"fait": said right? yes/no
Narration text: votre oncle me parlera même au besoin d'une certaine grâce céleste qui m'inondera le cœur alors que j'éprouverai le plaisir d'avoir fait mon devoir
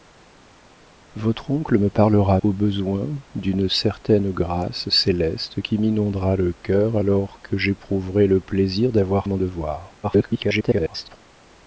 no